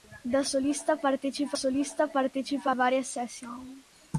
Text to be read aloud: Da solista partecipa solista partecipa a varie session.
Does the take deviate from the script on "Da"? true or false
false